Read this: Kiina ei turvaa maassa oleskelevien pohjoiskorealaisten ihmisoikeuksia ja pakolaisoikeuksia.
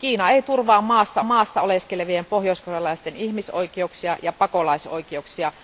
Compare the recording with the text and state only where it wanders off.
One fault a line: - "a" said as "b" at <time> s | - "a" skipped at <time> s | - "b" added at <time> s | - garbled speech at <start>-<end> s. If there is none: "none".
- "maassa" added at 1.2 s